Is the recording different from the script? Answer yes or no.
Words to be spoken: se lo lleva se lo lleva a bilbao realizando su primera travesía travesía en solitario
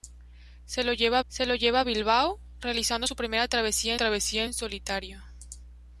no